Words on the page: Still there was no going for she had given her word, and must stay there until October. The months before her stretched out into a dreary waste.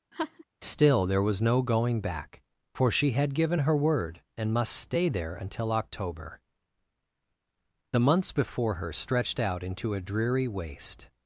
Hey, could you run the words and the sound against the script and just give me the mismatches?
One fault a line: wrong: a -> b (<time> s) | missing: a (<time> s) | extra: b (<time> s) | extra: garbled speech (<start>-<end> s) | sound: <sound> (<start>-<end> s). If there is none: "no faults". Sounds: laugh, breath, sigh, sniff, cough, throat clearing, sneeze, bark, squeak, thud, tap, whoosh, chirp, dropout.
sound: laugh (0.1-0.4 s)
extra: back (2.0 s)